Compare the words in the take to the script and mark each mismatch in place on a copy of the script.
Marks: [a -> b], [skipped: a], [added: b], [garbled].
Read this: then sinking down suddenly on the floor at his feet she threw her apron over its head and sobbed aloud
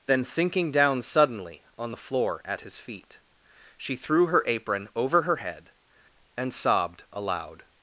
then sinking down suddenly on the floor at his feet she threw her apron over [its -> her] head and sobbed aloud